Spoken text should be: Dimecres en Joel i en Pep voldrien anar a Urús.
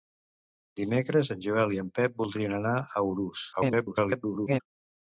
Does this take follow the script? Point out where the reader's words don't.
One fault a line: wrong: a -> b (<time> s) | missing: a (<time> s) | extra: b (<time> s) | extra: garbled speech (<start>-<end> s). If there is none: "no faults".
extra: garbled speech (3.5-4.6 s)